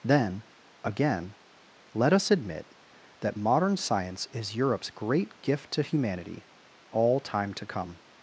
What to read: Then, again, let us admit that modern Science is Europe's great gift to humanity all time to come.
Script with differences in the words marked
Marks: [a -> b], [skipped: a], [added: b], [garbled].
Then, again, let us admit that modern Science is Europe's great gift to humanity all time to come.